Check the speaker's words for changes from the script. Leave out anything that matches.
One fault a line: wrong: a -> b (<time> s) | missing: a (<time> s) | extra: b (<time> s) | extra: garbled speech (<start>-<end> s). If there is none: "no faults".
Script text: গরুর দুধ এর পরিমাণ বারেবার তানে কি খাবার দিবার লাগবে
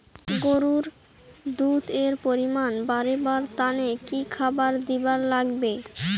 no faults